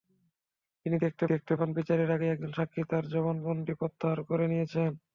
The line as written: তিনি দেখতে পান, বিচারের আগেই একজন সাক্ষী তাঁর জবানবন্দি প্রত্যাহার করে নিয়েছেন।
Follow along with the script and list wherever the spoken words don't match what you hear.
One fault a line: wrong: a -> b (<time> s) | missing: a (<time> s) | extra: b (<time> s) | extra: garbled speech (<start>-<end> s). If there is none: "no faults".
extra: দেখতে (1.2 s)